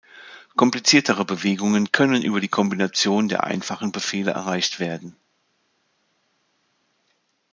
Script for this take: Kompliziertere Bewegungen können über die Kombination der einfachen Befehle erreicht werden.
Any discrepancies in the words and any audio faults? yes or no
no